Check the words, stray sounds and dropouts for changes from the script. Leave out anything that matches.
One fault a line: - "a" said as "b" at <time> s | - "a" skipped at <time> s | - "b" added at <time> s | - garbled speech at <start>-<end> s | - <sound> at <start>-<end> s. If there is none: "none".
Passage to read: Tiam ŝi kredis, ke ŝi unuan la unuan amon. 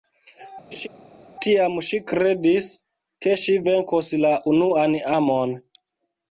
- laugh at 0.7-0.9 s
- "unuan" said as "venkos" at 3.7 s